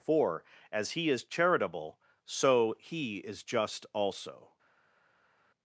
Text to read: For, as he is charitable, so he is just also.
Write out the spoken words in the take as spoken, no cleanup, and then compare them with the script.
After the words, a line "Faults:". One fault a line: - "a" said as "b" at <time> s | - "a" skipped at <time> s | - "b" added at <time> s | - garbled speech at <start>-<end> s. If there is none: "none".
For, as he is charitable, so he is just also.
Faults:
none